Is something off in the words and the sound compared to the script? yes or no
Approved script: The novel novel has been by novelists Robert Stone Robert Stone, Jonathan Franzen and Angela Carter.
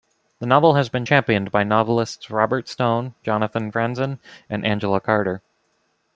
yes